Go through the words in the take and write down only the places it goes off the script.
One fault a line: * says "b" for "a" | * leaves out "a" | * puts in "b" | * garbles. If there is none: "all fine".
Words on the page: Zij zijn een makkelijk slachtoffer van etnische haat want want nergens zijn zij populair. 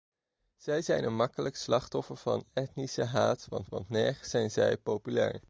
all fine